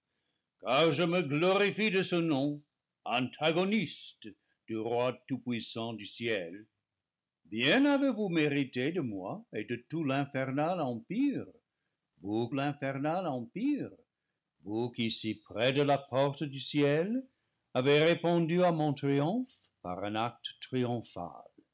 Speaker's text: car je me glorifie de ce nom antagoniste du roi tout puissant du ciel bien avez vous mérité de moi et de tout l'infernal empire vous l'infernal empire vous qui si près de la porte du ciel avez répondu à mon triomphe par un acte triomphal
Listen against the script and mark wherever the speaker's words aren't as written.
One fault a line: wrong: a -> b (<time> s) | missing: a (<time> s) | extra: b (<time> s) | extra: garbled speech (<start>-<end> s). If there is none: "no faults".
no faults